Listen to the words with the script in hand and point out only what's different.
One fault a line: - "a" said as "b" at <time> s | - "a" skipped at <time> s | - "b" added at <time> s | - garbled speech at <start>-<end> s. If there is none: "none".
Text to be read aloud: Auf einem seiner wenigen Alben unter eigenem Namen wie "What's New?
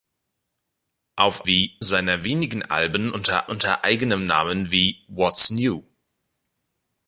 - "einem" said as "wie" at 1.5 s
- "unter" added at 3.5 s